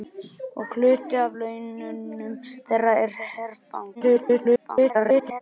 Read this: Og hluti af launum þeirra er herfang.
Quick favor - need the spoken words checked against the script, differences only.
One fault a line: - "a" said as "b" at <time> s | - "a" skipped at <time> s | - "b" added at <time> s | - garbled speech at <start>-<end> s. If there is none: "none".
- garbled speech at 3.9-5.4 s